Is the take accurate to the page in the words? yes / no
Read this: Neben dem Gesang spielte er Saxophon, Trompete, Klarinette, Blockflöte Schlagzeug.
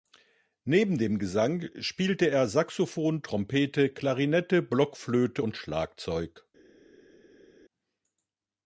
no